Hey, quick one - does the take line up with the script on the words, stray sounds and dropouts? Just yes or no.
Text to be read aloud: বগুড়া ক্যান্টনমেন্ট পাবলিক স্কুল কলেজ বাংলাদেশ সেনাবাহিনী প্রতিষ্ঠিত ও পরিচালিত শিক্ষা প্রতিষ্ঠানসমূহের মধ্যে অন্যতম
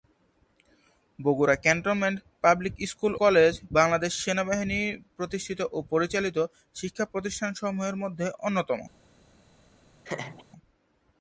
no